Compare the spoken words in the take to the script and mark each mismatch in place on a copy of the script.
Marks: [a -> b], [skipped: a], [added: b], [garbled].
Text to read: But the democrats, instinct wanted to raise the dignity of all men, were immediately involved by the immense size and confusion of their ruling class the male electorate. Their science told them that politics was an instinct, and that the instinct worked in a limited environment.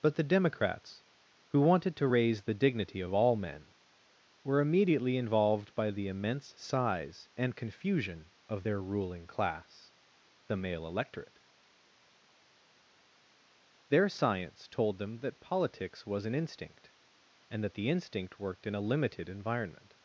But the democrats, [instinct -> who] wanted to raise the dignity of all men, were immediately involved by the immense size and confusion of their ruling class the male electorate. Their science told them that politics was an instinct, and that the instinct worked in a limited environment.